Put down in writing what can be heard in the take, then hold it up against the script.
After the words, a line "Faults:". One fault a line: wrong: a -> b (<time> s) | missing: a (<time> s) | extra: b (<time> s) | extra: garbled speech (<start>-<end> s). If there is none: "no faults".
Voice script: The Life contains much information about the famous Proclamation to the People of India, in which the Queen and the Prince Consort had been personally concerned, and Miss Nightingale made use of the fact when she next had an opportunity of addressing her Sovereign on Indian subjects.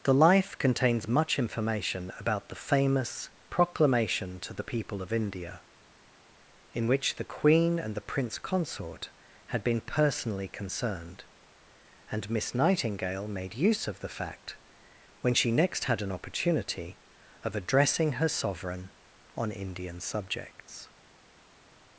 The Life contains much information about the famous Proclamation to the People of India, in which the Queen and the Prince Consort had been personally concerned, and Miss Nightingale made use of the fact when she next had an opportunity of addressing her Sovereign on Indian subjects.
Faults:
no faults